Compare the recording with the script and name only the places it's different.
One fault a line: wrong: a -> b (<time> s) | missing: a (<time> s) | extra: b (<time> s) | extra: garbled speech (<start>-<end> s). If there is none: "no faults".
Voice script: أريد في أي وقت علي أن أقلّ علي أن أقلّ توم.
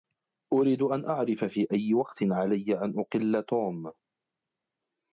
extra: أن أعرف (0.8 s)
missing: علي أن أقلّ (3.4 s)